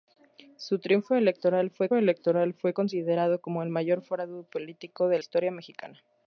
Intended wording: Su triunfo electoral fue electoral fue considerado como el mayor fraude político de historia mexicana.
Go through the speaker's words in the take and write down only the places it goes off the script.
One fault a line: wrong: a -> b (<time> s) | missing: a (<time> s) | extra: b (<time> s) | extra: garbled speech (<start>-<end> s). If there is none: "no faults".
no faults